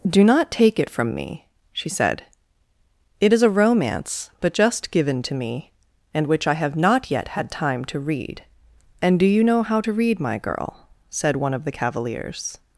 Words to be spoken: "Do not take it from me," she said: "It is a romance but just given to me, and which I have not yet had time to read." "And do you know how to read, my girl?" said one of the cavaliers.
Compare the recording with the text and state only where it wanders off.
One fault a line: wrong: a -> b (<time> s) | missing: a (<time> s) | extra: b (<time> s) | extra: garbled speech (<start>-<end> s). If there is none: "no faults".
no faults